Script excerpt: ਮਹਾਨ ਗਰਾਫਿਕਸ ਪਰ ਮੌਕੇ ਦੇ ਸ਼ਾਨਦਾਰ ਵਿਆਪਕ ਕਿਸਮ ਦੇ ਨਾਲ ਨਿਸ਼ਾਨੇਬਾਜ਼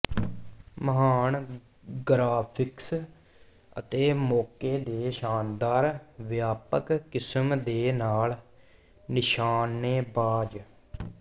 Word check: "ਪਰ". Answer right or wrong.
wrong